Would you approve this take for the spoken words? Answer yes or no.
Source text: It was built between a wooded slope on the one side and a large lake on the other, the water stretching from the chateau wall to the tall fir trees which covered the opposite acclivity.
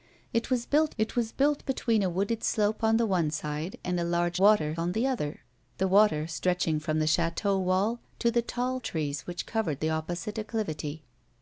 no